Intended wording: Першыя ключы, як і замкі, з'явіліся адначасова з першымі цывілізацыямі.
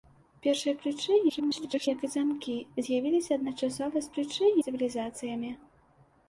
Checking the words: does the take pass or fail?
fail